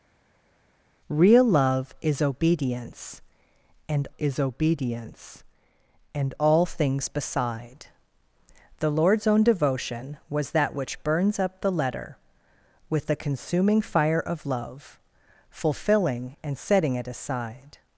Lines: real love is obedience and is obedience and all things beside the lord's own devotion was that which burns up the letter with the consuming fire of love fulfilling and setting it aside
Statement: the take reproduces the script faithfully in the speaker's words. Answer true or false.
true